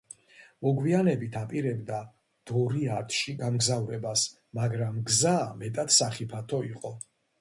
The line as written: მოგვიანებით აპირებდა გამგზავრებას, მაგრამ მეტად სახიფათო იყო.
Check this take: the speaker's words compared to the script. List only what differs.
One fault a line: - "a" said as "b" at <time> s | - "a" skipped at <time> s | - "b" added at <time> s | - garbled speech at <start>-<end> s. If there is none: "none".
- "დორიათში" added at 2.5 s
- "გზა" added at 5.1 s